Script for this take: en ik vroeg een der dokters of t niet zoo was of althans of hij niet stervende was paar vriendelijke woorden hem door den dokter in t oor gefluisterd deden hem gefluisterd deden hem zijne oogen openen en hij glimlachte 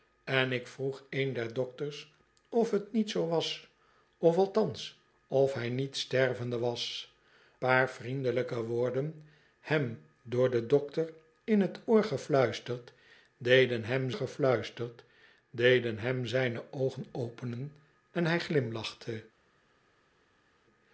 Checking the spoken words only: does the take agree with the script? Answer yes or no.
yes